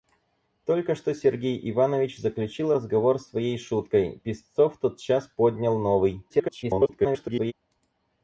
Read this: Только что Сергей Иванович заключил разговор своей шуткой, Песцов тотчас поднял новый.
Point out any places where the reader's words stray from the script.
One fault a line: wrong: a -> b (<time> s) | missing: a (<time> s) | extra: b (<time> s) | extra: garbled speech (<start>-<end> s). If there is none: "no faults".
extra: garbled speech (6.3-7.5 s)